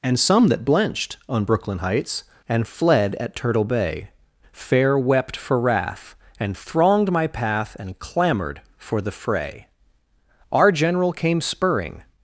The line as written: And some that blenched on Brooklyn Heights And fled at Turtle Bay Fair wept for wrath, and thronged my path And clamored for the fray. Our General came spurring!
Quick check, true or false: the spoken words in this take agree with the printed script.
true